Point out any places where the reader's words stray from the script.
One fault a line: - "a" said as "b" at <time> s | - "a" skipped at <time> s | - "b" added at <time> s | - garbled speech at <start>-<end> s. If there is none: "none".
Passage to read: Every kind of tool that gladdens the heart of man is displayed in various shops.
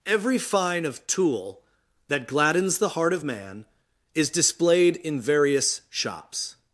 - "kind" said as "fine" at 0.4 s